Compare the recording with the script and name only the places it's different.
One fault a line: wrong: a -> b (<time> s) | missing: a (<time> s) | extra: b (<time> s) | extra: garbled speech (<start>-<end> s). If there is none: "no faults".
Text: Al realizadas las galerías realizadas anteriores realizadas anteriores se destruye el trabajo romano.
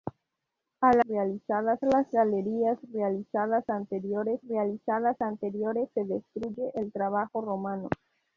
no faults